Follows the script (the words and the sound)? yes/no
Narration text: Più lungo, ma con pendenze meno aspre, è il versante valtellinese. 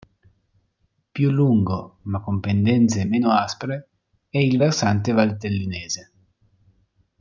yes